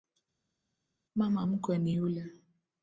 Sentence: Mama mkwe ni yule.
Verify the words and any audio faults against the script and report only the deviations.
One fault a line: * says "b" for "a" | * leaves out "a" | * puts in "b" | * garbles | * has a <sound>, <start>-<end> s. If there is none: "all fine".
all fine